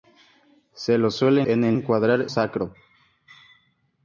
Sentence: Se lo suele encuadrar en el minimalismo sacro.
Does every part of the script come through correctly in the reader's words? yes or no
no